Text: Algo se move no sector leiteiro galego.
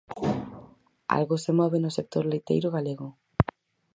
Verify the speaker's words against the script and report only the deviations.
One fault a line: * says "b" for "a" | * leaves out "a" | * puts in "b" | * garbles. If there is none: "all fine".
all fine